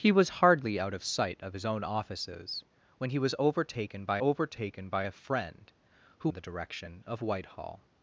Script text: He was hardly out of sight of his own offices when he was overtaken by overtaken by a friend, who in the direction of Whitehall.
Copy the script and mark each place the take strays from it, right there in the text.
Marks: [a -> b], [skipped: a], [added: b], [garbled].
He was hardly out of sight of his own offices when he was overtaken by overtaken by a friend, who in the direction of Whitehall.